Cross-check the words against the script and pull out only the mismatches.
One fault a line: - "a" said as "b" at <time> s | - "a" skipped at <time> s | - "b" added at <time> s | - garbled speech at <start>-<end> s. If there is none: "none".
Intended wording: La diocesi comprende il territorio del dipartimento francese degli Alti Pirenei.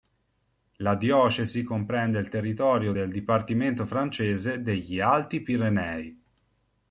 none